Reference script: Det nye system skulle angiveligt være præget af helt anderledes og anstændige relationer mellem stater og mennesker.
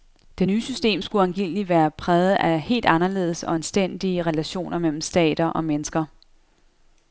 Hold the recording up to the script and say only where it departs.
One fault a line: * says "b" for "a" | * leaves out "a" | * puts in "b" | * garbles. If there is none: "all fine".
all fine